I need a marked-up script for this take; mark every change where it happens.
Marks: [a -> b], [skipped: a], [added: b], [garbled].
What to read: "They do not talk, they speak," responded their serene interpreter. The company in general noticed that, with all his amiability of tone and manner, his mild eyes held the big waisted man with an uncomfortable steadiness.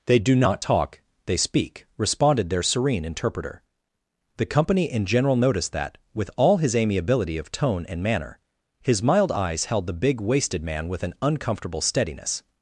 "They do not talk, they speak," responded their serene interpreter. The company in general noticed that, with all his amiability of tone and manner, his mild eyes held the big waisted man with an uncomfortable steadiness.